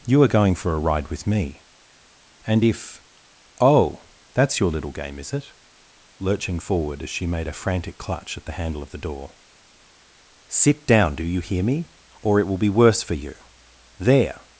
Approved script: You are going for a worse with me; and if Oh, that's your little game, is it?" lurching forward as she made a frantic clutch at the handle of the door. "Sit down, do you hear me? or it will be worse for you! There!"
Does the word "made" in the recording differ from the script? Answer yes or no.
no